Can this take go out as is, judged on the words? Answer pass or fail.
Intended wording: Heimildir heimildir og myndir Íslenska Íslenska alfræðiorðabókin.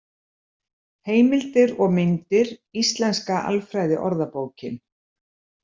fail